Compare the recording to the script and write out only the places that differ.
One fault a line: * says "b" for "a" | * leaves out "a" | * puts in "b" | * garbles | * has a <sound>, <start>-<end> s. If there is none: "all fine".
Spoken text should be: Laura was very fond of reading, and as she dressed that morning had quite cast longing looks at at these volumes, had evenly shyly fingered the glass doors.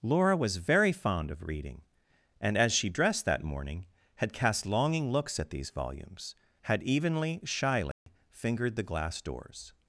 * leaves out "quite"
* leaves out "at"
* has a dropout, 7.9-8.1 s